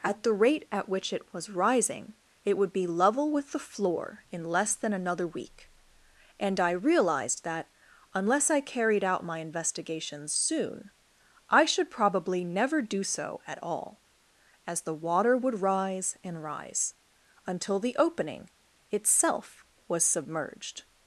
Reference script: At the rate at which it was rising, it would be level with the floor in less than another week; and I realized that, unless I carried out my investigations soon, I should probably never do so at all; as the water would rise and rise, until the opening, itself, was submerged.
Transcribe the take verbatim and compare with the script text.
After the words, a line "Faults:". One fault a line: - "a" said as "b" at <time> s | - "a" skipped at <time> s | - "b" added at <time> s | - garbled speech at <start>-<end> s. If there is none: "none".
At the rate at which it was rising, it would be level with the floor in less than another week; and I realized that, unless I carried out my investigations soon, I should probably never do so at all; as the water would rise and rise, until the opening, itself, was submerged.
Faults:
none